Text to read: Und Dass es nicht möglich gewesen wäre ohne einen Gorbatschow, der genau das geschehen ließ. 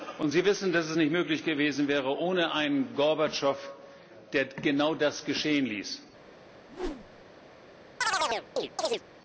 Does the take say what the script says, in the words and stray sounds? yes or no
no